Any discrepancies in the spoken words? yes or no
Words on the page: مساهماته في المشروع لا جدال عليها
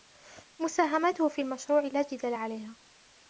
no